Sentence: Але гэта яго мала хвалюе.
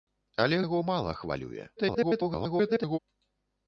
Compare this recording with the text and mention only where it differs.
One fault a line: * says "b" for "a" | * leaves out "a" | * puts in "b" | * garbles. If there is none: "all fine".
* leaves out "гэта"
* garbles